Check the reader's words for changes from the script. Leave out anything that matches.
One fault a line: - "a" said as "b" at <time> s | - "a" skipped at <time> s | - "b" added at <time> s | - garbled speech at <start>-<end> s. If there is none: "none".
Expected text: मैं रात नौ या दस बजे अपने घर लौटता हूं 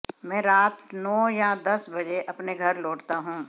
none